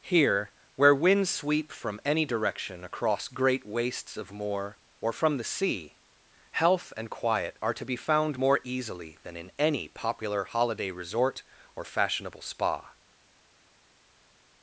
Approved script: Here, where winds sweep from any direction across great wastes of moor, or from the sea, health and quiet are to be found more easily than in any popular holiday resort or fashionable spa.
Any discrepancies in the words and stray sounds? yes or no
no